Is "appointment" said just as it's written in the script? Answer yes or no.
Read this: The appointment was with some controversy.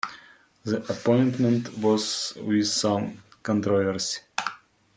yes